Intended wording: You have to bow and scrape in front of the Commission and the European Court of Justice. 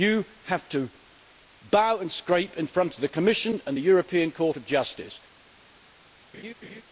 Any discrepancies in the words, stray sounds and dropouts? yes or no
yes